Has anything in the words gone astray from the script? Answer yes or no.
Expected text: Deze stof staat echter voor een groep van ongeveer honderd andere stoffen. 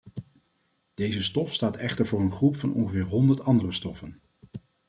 no